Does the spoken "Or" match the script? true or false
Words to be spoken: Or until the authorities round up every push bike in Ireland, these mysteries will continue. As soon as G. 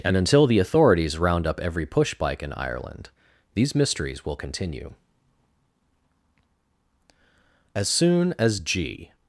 false